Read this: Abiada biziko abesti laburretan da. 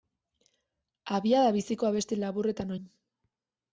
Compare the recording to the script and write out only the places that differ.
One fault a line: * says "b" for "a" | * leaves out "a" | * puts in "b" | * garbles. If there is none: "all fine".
all fine